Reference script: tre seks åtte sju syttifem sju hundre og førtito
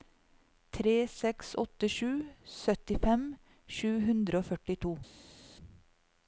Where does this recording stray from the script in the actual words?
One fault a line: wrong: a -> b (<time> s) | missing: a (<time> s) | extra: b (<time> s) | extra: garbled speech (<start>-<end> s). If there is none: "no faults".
no faults